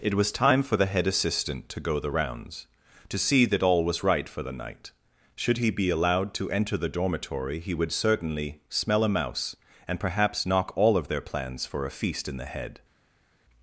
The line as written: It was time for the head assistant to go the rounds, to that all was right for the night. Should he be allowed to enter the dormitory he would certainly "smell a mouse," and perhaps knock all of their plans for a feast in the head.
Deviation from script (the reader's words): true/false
true